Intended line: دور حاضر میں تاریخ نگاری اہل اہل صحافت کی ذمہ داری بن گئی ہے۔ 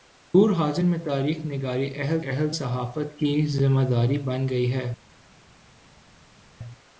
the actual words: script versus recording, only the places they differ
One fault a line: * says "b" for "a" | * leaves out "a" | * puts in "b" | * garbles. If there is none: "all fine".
all fine